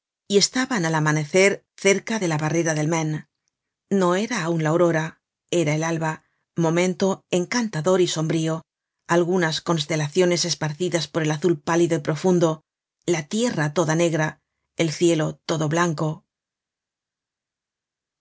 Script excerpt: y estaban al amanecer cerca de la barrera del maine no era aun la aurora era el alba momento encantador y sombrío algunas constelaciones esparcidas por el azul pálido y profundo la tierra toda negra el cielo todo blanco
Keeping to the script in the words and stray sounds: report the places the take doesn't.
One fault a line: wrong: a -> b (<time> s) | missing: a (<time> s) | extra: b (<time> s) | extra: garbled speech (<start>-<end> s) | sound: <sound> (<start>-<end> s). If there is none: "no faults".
no faults